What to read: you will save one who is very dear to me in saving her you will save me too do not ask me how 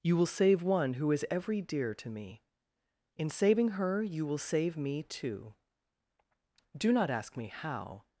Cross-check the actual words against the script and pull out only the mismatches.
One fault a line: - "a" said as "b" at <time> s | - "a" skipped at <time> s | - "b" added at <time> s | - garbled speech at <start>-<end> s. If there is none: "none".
- "very" said as "every" at 1.3 s